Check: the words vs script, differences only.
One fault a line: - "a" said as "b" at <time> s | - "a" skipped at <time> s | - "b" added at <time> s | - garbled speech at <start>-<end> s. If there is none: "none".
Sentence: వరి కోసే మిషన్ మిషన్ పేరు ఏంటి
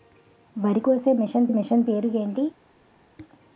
none